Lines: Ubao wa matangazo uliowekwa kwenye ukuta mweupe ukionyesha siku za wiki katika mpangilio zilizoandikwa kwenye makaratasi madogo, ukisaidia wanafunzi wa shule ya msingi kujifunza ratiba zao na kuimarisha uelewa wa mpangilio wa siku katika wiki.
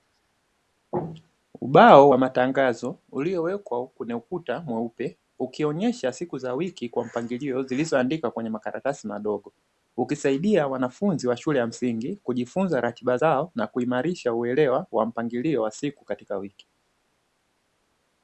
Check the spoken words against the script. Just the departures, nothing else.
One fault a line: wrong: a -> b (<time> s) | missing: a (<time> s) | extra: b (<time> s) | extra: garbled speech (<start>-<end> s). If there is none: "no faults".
wrong: katika -> kwa (6.9 s)